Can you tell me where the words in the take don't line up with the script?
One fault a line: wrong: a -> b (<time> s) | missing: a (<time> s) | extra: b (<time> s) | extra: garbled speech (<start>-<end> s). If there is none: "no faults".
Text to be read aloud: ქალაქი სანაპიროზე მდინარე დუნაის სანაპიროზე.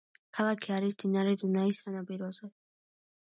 wrong: სანაპიროზე -> არის (0.8 s)